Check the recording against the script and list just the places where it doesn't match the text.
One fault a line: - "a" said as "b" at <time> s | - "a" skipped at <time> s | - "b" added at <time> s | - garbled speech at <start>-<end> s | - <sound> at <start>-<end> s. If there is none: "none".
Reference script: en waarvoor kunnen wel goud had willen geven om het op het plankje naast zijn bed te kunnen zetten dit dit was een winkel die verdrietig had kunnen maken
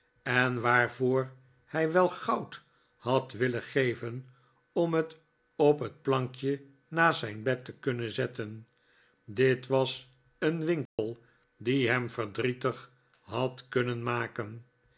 - "kunnen" said as "hij" at 1.6 s
- "dit" skipped at 9.7 s
- dropout at 10.9-11.0 s
- "hem" added at 11.9 s